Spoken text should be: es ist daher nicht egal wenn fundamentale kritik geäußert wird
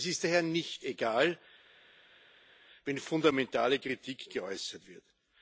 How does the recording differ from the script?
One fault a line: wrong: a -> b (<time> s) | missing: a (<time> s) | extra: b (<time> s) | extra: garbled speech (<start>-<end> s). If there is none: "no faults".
no faults